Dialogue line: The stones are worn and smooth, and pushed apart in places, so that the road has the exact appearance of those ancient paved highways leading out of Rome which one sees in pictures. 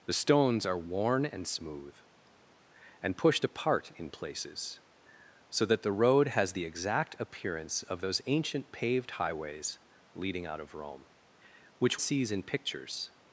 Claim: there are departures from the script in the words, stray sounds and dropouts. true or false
true